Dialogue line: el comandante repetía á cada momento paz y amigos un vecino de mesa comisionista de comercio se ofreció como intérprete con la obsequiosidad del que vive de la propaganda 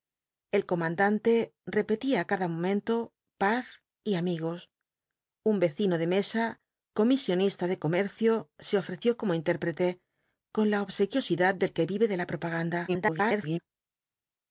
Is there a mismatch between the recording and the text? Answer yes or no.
yes